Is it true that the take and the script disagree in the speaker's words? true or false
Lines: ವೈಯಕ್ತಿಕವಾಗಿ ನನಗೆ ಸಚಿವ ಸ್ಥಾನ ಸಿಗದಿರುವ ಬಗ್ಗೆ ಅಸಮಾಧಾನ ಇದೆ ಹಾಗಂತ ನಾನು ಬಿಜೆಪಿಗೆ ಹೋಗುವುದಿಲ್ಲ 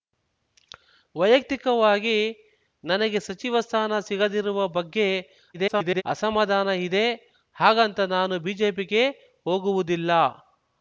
true